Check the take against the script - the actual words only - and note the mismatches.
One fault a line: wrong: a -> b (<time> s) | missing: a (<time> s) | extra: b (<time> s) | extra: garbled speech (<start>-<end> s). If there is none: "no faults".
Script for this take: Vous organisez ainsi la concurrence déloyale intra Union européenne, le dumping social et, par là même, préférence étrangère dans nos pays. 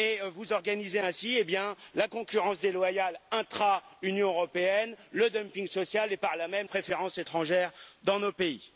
no faults